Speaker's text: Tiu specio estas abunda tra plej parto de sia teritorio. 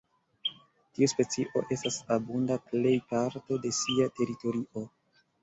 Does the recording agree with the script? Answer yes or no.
no